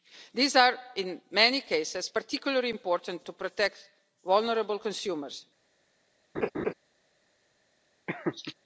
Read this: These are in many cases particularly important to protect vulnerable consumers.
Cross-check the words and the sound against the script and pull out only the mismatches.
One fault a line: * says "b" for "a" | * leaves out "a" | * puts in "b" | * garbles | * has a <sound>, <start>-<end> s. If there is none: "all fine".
* has a laugh, 6.3-6.7 s
* has a laugh, 8.1-8.5 s